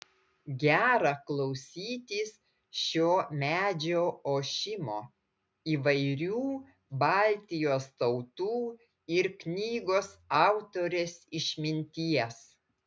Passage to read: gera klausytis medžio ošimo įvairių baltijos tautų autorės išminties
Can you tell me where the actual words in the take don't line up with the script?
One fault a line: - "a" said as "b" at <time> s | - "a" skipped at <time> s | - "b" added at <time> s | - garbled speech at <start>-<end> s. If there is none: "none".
- "šio" added at 2.8 s
- "ir knygos" added at 9.2 s